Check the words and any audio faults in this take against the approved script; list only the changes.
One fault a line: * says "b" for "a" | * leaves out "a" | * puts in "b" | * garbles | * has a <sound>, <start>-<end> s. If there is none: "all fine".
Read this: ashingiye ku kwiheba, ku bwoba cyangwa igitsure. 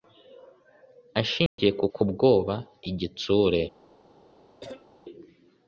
* has a dropout, 1.5-1.6 s
* leaves out "kwiheba"
* leaves out "cyangwa"
* has a cough, 4.6-4.9 s